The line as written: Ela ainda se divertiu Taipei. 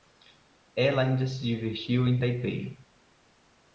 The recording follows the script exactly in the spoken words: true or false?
false